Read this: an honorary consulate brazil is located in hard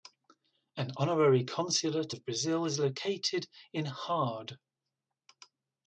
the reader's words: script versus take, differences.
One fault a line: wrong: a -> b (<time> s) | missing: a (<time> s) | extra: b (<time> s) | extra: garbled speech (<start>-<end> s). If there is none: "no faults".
extra: of (2.1 s)